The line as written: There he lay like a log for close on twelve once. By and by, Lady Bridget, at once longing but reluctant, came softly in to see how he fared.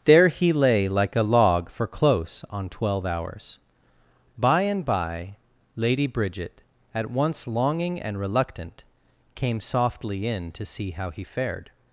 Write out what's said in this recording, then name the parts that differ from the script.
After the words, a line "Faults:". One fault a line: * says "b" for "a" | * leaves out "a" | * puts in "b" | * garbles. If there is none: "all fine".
There he lay like a log for close on twelve hours. By and by, Lady Bridget, at once longing and reluctant, came softly in to see how he fared.
Faults:
* says "hours" for "once"
* says "and" for "but"